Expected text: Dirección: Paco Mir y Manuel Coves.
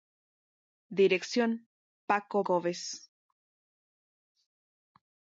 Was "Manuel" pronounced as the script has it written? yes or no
no